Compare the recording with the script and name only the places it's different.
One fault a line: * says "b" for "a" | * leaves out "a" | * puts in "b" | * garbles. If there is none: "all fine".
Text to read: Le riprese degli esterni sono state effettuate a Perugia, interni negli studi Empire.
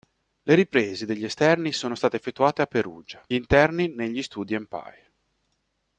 all fine